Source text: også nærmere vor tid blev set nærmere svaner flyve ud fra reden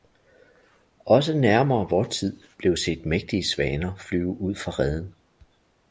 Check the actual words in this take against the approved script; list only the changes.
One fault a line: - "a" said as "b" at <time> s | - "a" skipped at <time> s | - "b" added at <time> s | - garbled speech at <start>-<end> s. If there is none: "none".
- "nærmere" said as "mægtige" at 3.1 s